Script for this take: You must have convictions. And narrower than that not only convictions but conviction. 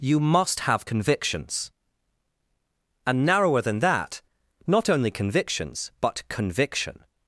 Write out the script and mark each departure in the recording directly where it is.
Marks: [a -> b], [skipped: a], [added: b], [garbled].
You must have convictions. And narrower than that not only convictions but conviction.